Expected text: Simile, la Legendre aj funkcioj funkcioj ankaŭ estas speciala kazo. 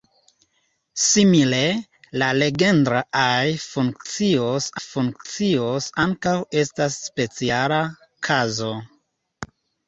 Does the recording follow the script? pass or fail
pass